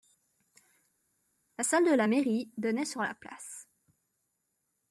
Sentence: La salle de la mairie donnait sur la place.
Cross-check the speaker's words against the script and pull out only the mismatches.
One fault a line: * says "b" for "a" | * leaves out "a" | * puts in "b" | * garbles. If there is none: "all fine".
all fine